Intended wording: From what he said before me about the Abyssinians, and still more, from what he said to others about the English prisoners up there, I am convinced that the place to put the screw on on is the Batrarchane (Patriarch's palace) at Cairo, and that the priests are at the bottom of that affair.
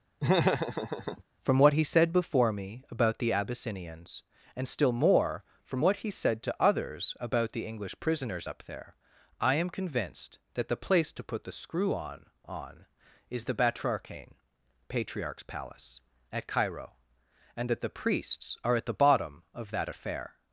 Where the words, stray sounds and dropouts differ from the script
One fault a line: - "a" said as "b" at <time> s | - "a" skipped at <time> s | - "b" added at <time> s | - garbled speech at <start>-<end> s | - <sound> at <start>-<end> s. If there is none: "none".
- laugh at 0.2-1.2 s